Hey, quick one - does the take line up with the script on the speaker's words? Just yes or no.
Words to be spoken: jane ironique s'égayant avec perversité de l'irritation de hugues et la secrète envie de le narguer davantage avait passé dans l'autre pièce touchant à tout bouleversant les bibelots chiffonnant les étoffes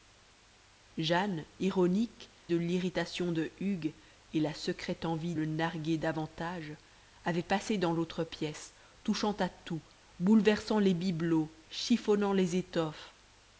no